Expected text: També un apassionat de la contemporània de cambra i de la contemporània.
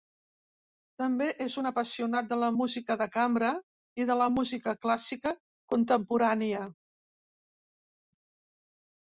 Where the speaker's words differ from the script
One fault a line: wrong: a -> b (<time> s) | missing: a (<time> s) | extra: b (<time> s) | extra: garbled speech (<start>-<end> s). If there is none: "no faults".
extra: és (1.4 s)
wrong: contemporània -> música (2.6 s)
extra: música clàssica (4.3 s)